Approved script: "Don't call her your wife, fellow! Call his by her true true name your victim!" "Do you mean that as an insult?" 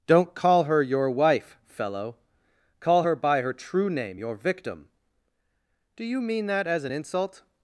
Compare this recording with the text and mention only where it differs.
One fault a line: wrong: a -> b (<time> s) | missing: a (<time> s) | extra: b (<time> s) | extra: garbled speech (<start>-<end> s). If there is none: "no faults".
wrong: his -> her (3.0 s)
missing: true (3.9 s)